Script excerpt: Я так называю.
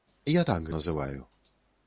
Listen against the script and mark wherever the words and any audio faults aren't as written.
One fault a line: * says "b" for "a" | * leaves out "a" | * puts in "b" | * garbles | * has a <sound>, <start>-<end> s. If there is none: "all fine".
all fine